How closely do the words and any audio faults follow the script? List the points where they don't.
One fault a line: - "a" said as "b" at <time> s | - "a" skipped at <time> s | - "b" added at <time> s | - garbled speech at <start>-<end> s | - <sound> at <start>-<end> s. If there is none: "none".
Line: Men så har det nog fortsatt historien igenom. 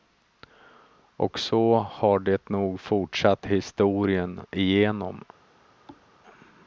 - "Men" said as "Och" at 1.1 s
- thud at 5.9-6.1 s